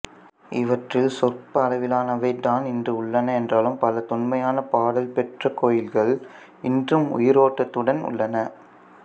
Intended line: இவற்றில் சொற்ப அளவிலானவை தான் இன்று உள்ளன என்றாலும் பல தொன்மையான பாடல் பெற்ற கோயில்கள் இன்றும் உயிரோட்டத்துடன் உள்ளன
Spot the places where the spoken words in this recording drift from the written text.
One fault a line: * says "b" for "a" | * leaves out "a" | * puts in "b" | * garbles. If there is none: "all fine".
all fine